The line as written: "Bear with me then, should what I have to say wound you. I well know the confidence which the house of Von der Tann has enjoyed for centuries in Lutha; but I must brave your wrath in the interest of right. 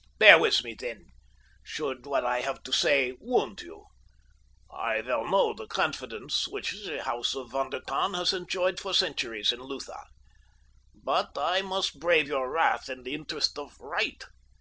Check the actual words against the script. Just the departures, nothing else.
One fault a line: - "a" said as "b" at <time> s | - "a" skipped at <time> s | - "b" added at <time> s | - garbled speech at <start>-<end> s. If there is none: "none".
none